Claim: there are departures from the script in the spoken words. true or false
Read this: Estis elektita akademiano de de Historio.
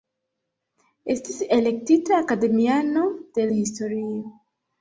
false